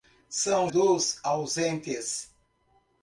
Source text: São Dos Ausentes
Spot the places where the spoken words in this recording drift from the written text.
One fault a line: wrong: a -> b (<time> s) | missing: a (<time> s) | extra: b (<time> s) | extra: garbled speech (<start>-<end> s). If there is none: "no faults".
no faults